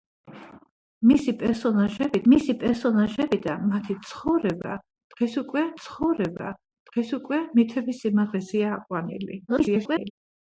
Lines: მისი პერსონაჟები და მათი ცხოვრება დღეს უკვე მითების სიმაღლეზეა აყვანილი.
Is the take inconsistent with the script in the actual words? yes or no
yes